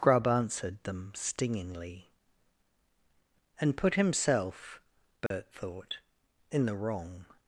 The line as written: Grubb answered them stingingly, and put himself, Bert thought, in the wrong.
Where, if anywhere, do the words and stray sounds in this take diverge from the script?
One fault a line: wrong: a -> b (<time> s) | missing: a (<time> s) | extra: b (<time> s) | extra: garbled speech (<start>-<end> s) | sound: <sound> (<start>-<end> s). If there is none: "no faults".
sound: dropout (5.3-5.3 s)